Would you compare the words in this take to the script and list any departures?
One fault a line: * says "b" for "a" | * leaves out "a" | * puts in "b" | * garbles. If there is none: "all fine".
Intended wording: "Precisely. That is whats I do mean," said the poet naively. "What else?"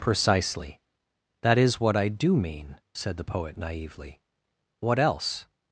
* says "what" for "whats"